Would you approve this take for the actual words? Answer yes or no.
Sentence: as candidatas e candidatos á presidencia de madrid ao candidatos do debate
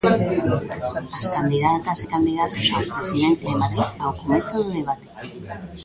no